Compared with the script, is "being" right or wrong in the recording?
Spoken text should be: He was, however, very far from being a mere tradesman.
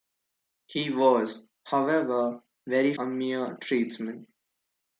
wrong